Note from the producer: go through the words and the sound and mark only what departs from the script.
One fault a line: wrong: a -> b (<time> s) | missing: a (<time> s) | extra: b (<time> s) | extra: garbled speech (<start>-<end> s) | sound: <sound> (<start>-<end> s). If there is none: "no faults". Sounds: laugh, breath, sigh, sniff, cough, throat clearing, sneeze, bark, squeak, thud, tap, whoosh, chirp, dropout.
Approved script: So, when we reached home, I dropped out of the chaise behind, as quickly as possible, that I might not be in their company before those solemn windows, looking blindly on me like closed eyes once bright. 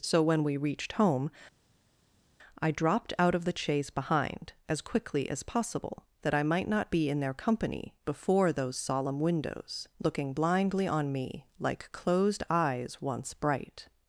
no faults